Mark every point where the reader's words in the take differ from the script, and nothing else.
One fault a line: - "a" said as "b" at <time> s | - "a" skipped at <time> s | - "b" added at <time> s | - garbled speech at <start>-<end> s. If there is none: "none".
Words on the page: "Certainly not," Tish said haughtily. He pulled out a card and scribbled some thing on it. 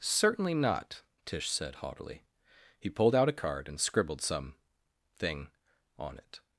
none